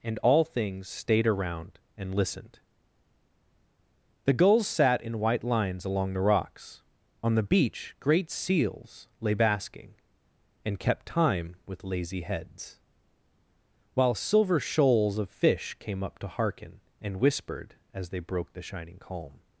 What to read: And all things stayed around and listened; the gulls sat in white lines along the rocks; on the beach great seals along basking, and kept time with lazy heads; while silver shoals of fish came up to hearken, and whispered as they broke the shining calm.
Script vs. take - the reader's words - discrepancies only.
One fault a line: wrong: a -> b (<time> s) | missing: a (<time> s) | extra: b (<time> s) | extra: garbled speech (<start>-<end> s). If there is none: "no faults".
wrong: along -> lay (9.2 s)